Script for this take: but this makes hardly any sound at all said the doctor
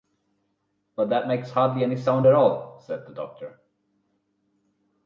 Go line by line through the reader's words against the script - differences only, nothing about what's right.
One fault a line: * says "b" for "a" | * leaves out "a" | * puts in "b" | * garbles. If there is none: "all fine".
* says "that" for "this"